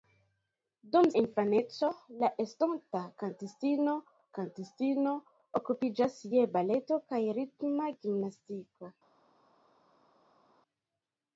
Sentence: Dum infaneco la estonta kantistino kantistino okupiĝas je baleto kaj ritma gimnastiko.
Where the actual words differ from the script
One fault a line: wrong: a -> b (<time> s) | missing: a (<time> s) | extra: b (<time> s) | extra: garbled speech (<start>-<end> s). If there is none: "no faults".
no faults